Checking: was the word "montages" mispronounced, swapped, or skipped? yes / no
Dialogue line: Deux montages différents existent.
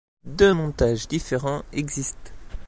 no